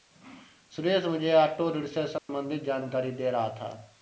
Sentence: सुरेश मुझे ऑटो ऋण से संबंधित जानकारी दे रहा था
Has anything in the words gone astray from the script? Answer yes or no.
no